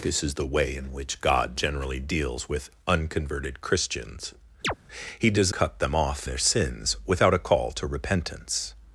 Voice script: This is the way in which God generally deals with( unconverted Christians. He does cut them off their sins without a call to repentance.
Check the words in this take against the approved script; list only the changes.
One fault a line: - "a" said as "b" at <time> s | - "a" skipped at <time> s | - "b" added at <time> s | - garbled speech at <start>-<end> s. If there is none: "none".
none